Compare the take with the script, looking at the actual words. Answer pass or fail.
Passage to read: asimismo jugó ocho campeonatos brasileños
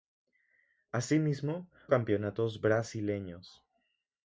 fail